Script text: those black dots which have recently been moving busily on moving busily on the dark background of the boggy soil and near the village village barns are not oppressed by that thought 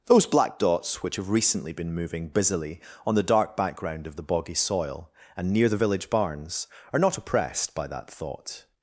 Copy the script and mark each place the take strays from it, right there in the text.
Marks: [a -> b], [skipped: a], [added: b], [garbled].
those black dots which have recently been moving busily on [skipped: moving busily on] the dark background of the boggy soil and near the village [skipped: village] barns are not oppressed by that thought